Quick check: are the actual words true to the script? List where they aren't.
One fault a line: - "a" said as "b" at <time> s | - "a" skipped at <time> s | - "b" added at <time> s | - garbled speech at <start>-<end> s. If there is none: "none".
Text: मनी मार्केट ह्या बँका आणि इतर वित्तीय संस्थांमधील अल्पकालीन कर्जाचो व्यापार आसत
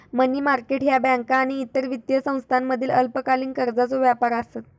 none